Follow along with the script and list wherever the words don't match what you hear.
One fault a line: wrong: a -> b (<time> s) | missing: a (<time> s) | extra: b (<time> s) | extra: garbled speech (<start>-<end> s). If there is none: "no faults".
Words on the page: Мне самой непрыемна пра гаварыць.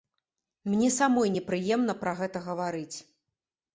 extra: гэта (2.2 s)